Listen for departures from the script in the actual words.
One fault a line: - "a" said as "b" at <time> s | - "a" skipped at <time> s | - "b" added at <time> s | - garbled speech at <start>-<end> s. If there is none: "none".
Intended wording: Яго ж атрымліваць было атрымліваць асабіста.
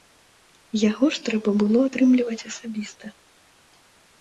- "атрымліваць" said as "трэба" at 1.3 s